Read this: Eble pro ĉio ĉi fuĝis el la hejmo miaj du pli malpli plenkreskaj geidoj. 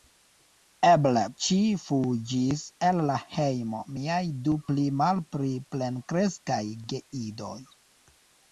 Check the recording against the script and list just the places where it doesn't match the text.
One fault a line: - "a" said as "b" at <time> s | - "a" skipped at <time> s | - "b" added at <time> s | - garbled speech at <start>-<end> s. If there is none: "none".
- "pro ĉio" skipped at 1.2 s